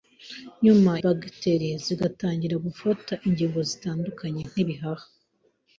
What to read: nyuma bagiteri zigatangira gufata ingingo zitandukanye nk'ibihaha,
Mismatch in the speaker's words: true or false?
false